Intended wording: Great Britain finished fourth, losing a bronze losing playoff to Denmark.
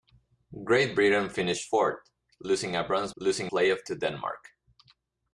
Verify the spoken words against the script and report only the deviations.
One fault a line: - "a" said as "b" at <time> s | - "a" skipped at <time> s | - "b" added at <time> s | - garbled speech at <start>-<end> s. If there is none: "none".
none